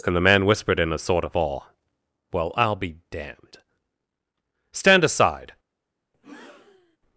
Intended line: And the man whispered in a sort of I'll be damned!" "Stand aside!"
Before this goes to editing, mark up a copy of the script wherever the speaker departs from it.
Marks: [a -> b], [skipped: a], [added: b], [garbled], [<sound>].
And the man whispered in a sort of [added: awe Well] I'll be damned!" "Stand aside!" [breath]